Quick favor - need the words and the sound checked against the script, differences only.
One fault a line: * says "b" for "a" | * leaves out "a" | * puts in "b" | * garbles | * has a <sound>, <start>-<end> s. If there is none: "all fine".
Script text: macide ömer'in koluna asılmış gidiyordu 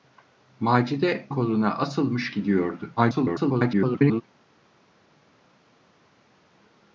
* leaves out "ömer'in"
* garbles